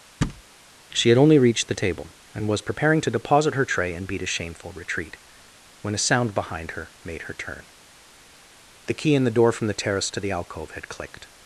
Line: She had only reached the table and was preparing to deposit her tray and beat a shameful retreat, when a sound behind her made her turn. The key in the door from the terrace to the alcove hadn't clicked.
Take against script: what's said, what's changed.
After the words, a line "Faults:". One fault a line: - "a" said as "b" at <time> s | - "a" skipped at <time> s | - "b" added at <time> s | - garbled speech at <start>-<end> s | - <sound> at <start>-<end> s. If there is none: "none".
She had only reached the table and was preparing to deposit her tray and beat a shameful retreat, when a sound behind her made her turn. The key in the door from the terrace to the alcove had clicked.
Faults:
- thud at 0.2-0.4 s
- "hadn't" said as "had" at 10.7 s